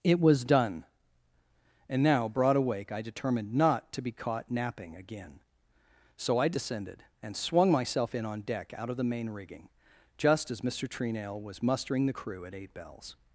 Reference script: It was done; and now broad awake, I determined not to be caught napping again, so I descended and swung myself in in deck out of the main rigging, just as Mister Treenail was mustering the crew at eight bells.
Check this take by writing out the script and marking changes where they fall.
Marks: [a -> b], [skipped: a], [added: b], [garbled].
It was done; and now broad awake, I determined not to be caught napping again, so I descended and swung myself in [in -> on] deck out of the main rigging, just as Mister Treenail was mustering the crew at eight bells.